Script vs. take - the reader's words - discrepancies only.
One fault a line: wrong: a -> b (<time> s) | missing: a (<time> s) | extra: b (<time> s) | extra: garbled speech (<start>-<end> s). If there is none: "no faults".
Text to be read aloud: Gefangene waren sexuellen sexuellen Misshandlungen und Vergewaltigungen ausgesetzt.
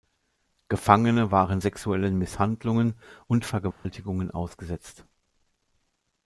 missing: sexuellen (2.2 s)